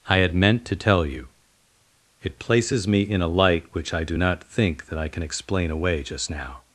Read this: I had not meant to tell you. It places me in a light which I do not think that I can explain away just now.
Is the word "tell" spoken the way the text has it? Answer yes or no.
yes